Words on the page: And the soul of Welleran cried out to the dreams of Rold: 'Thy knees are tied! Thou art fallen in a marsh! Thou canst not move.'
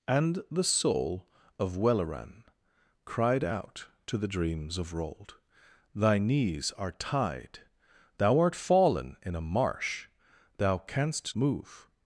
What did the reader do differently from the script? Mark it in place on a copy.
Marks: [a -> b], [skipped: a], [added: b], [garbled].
And the soul of Welleran cried out to the dreams of Rold: 'Thy knees are tied! Thou art fallen in a marsh! Thou canst [skipped: not] move.'